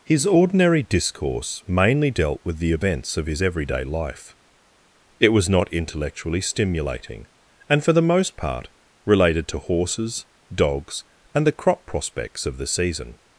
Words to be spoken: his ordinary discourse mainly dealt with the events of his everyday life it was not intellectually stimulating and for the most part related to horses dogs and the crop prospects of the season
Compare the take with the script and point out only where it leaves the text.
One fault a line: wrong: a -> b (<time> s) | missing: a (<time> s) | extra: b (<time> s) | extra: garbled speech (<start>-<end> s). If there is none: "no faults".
no faults